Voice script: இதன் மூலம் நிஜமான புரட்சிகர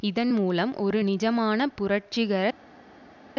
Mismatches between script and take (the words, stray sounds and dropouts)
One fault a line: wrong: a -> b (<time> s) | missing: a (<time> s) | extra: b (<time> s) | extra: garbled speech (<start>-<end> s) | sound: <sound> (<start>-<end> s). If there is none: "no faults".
extra: ஒரு (0.8 s)